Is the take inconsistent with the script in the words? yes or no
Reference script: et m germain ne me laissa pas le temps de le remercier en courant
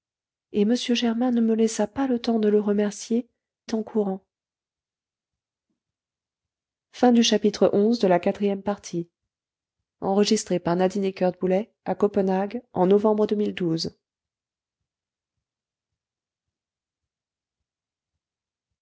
no